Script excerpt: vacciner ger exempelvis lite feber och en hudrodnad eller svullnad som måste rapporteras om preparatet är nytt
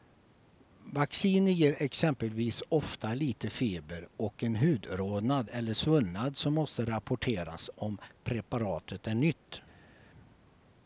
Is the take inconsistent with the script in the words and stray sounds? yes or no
yes